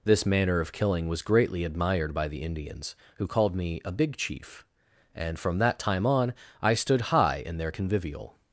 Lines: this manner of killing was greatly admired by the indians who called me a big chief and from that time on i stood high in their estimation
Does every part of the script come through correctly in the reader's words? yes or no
no